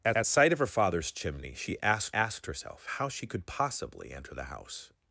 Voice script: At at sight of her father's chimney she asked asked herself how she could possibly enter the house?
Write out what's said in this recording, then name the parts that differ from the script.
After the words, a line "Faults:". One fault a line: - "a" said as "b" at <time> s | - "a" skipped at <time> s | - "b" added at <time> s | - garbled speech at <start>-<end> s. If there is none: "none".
At at sight of her father's chimney she asked asked herself how she could possibly enter the house?
Faults:
none